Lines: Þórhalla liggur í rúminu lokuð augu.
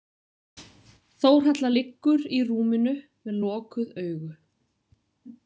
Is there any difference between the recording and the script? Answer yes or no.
yes